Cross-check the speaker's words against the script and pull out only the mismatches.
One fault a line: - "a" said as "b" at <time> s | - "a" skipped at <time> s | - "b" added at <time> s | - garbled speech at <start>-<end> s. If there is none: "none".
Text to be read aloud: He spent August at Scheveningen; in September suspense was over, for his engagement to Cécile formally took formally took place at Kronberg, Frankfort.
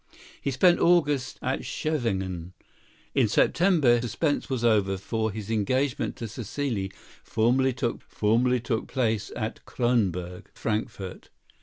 none